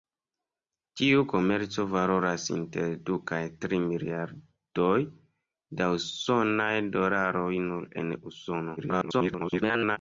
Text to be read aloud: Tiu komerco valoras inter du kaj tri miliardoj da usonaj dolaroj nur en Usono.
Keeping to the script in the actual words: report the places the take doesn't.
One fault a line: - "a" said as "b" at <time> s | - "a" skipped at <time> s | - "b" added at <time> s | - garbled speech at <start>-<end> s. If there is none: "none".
- garbled speech at 8.8-10.0 s